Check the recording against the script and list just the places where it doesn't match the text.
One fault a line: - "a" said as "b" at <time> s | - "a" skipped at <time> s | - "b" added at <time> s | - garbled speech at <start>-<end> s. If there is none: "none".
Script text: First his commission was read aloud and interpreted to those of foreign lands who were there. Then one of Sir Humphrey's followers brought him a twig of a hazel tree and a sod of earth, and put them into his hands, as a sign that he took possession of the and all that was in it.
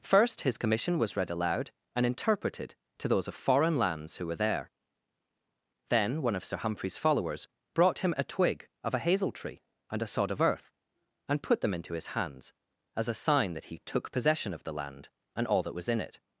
- "land" added at 14.7 s